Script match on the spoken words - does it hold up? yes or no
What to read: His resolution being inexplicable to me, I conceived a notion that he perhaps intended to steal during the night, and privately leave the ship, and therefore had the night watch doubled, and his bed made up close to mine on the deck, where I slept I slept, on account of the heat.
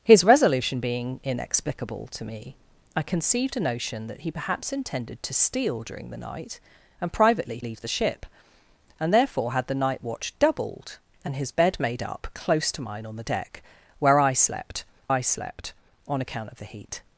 yes